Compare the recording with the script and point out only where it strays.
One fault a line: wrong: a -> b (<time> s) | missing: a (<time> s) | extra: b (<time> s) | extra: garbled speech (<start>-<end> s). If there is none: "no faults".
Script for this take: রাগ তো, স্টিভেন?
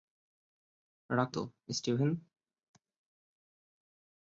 no faults